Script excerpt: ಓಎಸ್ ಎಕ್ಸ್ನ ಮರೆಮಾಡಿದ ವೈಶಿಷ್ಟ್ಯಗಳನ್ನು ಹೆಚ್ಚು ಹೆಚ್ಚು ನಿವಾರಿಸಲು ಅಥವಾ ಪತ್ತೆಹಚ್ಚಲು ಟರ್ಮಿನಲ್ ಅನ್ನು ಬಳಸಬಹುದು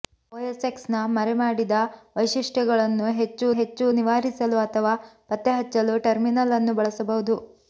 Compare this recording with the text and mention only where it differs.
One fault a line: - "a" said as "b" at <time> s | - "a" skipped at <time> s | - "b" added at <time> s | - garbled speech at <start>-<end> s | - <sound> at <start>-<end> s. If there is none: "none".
none